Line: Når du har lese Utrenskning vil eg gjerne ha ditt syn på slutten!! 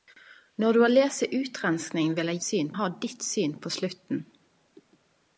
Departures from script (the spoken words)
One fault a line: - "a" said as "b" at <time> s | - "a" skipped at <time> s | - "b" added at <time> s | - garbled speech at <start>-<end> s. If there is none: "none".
- "gjerne" said as "syn" at 2.4 s